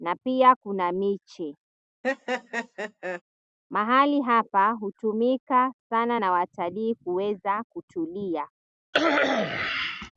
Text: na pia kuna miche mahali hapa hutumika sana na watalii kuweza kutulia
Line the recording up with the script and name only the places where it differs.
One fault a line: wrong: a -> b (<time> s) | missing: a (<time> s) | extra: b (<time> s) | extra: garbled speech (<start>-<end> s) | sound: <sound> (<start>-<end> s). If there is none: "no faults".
sound: laugh (2.0-3.2 s)
sound: cough (8.9-10.1 s)